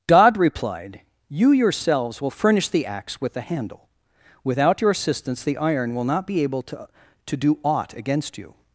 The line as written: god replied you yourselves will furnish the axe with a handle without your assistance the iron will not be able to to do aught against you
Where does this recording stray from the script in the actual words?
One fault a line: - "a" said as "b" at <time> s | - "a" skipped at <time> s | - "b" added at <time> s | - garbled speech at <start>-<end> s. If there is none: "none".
none